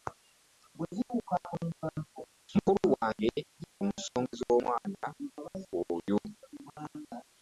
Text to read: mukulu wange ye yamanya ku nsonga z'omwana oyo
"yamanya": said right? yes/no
no